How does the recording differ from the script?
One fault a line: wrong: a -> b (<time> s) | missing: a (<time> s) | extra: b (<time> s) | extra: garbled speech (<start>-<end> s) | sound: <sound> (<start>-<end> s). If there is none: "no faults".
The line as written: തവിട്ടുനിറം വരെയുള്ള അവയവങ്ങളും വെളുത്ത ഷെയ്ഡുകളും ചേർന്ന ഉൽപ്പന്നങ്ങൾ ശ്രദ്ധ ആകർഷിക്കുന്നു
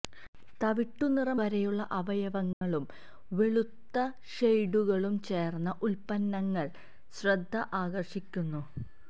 sound: dropout (2.5-2.6 s)